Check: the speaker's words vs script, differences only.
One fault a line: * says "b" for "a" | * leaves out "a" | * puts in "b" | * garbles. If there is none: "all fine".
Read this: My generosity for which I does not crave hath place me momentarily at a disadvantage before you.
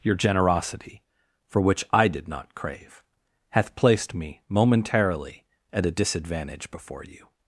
* says "Your" for "My"
* says "did" for "does"
* says "placed" for "place"